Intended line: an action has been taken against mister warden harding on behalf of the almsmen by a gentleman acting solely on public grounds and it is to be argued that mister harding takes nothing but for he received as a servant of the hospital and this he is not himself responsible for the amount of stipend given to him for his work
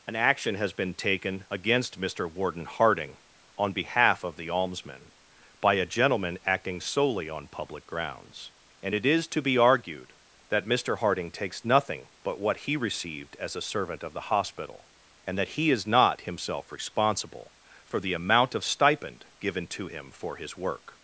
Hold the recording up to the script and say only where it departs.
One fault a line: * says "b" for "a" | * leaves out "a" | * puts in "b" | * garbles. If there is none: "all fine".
* says "what" for "for"
* says "that" for "this"